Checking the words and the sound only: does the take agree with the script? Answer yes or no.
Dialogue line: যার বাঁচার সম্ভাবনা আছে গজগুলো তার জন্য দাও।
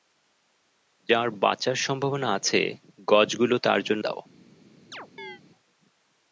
no